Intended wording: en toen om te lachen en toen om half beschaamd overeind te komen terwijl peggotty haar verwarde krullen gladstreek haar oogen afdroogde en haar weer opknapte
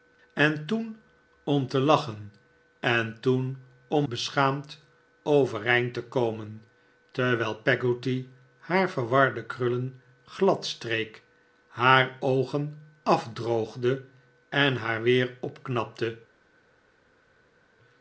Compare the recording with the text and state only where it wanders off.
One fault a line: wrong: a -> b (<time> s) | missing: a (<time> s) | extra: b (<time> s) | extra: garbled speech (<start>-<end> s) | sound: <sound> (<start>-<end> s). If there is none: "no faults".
missing: half (4.1 s)